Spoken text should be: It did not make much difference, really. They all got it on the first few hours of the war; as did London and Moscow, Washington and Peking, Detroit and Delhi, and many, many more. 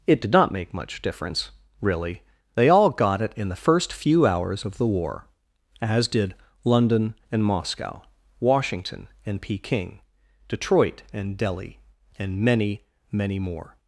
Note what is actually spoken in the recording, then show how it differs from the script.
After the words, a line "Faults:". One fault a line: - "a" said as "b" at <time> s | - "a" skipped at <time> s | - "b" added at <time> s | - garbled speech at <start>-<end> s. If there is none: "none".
It did not make much difference, really. They all got it in the first few hours of the war; as did London and Moscow, Washington and Peking, Detroit and Delhi, and many, many more.
Faults:
- "on" said as "in" at 3.4 s